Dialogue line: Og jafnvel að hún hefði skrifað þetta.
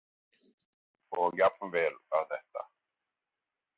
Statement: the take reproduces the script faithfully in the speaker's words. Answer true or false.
false